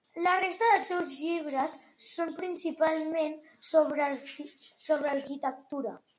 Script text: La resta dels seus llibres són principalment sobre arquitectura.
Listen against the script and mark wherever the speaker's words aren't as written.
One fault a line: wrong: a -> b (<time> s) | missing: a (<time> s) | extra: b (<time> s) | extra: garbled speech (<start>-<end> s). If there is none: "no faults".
no faults